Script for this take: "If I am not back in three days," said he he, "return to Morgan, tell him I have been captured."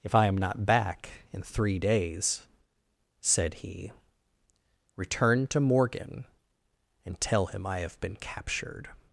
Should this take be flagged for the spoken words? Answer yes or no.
yes